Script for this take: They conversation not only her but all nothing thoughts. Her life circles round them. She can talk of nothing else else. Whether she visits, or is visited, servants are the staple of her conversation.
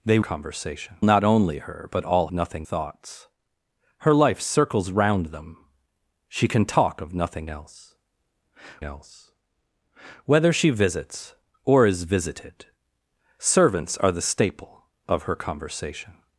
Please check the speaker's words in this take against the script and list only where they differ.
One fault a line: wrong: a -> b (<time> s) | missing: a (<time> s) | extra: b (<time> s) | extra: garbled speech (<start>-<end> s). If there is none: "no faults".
no faults